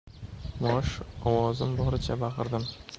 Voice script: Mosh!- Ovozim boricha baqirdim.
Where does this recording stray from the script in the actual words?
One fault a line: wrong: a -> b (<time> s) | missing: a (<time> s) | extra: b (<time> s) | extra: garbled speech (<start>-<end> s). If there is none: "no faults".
no faults